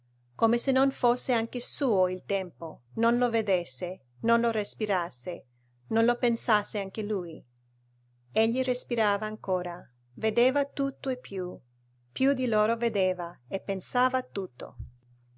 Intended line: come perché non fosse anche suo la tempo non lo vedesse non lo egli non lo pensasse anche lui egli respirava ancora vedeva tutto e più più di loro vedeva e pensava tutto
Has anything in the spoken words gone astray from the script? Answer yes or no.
yes